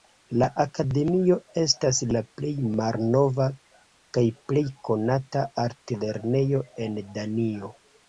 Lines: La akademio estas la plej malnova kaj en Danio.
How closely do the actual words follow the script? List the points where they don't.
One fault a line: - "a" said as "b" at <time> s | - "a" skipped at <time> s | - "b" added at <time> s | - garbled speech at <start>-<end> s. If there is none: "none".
- "plej konata altlernejo" added at 4.5 s